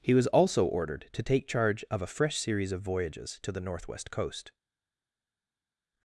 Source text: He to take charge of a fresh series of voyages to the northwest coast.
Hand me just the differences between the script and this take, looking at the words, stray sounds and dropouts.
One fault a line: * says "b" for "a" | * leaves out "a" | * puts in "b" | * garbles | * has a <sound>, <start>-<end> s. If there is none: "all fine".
* puts in "was also ordered"